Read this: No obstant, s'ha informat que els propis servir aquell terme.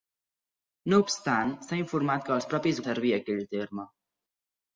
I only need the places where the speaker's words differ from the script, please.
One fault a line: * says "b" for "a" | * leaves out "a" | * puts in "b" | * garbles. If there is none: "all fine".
all fine